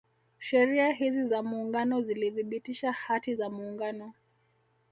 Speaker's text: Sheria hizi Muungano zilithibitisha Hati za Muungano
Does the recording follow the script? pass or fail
fail